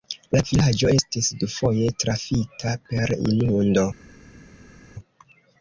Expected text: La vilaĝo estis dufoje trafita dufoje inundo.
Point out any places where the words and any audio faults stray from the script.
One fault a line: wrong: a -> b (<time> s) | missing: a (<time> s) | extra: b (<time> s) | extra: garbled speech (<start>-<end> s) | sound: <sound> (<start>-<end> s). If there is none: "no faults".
wrong: dufoje -> per (2.9 s)